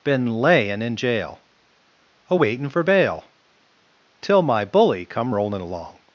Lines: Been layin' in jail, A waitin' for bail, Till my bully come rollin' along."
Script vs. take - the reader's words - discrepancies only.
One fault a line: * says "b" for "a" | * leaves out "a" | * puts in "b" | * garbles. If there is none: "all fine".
all fine